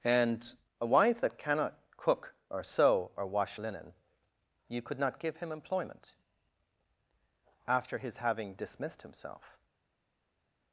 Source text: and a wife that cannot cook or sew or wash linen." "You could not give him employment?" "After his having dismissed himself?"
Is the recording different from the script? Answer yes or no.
no